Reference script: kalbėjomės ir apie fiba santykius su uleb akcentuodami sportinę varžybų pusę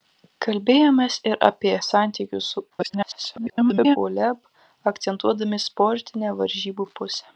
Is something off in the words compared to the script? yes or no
yes